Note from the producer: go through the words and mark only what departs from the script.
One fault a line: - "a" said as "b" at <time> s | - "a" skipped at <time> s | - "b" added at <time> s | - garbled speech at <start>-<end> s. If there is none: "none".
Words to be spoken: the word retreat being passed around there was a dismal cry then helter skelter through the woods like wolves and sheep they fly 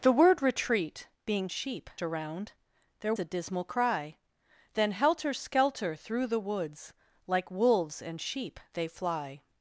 - "passed" said as "sheep" at 1.5 s
- "was" skipped at 3.1 s